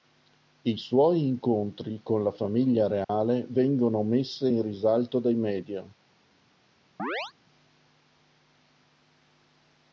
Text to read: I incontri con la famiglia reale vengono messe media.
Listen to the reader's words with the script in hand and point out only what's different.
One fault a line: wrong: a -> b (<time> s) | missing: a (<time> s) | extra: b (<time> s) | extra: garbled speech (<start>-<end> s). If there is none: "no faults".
extra: suoi (0.8 s)
extra: in risalto dai (4.5 s)